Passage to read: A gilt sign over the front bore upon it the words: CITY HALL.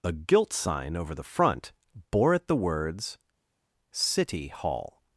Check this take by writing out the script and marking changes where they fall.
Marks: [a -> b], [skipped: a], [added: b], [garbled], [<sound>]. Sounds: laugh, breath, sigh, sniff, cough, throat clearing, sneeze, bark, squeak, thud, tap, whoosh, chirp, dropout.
A gilt sign over the front bore [skipped: upon] it the words: CITY HALL.